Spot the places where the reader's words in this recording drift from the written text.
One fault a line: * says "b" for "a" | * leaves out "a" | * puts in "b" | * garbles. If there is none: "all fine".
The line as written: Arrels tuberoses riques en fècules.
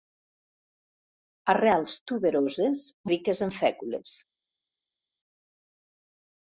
all fine